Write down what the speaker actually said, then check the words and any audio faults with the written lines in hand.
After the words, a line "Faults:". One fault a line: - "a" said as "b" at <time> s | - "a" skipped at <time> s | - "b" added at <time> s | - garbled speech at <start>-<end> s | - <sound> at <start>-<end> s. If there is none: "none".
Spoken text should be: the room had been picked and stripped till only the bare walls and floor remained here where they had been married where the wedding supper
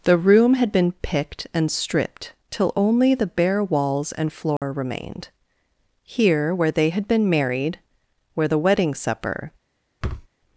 the room had been picked and stripped till only the bare walls and floor remained here where they had been married where the wedding supper
Faults:
- dropout at 4.6-4.6 s
- thud at 10.0-10.3 s